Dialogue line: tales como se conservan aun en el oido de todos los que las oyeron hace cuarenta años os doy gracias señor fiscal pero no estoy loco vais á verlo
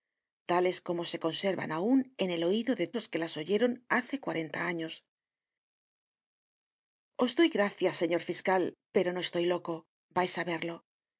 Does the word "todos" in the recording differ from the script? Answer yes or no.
yes